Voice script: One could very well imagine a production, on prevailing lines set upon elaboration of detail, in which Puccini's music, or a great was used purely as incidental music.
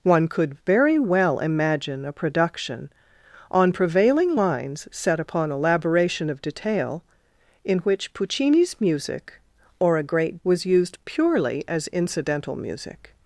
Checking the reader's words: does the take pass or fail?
pass